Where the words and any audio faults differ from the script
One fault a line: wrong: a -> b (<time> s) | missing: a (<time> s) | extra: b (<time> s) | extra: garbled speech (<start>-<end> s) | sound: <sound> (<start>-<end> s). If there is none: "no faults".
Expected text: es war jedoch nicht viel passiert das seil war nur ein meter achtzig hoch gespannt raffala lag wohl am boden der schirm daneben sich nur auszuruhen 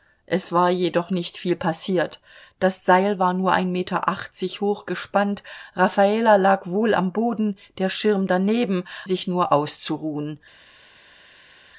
no faults